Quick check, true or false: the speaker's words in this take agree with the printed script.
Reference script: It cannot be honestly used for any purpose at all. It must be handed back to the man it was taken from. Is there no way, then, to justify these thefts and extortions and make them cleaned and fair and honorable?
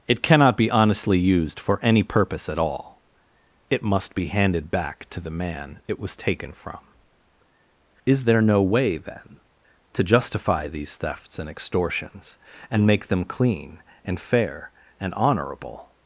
false